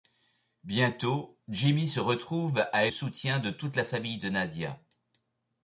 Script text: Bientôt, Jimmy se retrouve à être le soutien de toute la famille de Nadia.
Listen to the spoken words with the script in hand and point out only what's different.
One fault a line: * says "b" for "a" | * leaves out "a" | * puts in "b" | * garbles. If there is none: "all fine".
* leaves out "être le"